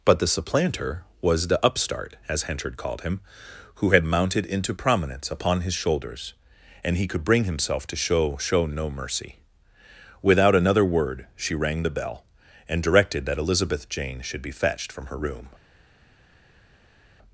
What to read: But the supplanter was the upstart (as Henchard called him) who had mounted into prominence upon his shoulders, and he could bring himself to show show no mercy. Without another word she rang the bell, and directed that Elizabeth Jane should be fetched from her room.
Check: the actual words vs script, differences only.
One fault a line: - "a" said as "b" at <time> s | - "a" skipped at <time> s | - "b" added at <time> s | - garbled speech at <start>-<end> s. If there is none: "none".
none